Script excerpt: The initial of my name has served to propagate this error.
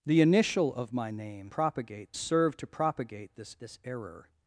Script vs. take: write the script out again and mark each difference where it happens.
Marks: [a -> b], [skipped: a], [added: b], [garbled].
The initial of my name [has -> propagate] served to propagate this [added: this] error.